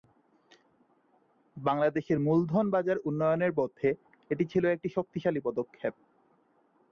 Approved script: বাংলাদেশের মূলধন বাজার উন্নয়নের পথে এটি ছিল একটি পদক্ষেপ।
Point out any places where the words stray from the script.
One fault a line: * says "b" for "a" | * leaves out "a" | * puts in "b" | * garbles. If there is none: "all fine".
* puts in "শক্তিশালী"